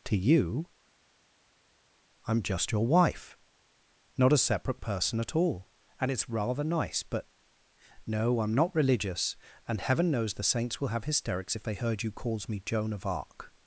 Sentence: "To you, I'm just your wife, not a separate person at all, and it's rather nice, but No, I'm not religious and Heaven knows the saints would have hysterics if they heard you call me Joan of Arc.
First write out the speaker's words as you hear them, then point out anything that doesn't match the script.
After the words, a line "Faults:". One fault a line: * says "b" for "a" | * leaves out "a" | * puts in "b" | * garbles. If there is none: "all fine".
"To you, I'm just your wife, not a separate person at all, and it's rather nice, but No, I'm not religious and Heaven knows the saints will have hysterics if they heard you calls me Joan of Arc.
Faults:
* says "will" for "would"
* says "calls" for "call"